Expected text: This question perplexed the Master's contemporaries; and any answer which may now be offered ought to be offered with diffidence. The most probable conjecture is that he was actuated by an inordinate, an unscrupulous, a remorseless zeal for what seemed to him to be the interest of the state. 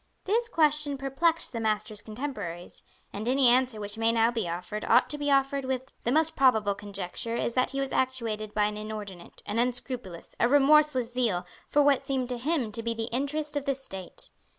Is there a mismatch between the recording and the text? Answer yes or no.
yes